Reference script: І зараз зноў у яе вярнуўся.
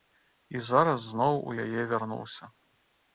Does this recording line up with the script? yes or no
yes